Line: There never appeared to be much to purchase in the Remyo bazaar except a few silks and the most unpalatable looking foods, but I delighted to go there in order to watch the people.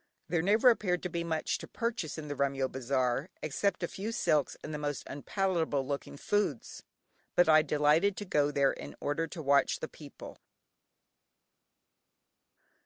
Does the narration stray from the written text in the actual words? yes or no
no